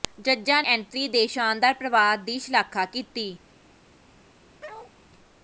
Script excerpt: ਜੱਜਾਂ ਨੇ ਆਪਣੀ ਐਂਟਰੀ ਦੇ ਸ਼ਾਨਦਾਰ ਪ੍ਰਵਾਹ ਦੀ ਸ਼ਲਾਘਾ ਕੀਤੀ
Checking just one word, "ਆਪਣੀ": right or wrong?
wrong